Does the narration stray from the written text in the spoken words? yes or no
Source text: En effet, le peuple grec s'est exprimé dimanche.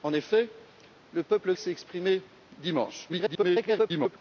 yes